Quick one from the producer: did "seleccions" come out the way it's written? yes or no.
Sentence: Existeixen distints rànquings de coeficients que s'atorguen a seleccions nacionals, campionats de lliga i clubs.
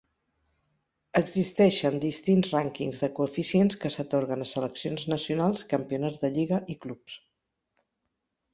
yes